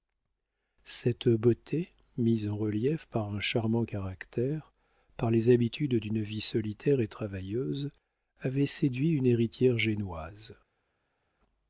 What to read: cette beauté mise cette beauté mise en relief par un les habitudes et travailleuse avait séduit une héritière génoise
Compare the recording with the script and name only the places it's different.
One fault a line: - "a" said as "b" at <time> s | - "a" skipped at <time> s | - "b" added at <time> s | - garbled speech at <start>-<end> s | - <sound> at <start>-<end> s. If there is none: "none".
- "cette beauté mise" skipped at 2.5 s
- "charmant caractère par" added at 3.4 s
- "d'une vie solitaire" added at 6.0 s